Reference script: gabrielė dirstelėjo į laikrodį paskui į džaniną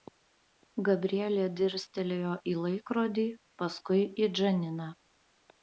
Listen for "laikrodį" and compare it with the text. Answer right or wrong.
right